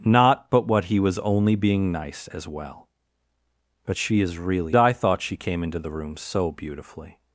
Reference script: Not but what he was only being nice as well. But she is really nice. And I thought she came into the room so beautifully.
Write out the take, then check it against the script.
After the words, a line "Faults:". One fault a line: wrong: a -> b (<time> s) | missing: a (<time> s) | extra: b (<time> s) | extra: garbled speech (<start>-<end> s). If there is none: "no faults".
Not but what he was only being nice as well. But she is really I thought she came into the room so beautifully.
Faults:
missing: nice And (4.8 s)